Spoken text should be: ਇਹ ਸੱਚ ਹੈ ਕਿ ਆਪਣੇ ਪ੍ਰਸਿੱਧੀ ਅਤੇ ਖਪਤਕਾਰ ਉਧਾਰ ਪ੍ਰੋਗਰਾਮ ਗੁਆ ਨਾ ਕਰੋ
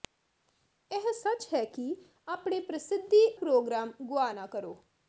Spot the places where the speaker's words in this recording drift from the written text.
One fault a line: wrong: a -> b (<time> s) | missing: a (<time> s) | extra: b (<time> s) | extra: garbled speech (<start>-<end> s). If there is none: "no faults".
missing: ਅਤੇ ਖਪਤਕਾਰ ਉਧਾਰ (3.2 s)